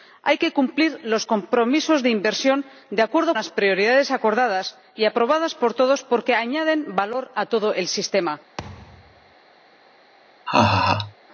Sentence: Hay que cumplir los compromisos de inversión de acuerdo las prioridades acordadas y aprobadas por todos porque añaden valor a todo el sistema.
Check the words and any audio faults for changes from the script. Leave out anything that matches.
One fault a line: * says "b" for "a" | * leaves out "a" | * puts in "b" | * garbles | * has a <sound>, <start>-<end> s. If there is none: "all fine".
* has a thud, 8.6-9.4 s
* has a laugh, 10.5-11.2 s